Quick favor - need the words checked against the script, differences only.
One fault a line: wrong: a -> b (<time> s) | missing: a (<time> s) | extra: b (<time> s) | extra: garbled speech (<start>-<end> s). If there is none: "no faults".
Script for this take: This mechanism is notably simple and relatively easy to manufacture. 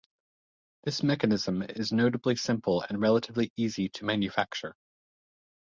no faults